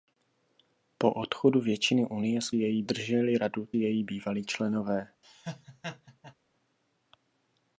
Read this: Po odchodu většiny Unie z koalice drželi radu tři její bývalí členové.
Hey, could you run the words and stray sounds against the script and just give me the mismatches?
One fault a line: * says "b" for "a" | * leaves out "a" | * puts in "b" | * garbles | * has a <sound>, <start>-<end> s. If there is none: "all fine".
* says "její" for "koalice"
* leaves out "tři"
* has a laugh, 5.2-6.3 s